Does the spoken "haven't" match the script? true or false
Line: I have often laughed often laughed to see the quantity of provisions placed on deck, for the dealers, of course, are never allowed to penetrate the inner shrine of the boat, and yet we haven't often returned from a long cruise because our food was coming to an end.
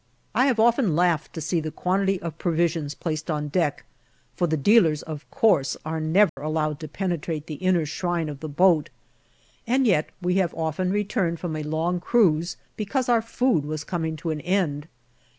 false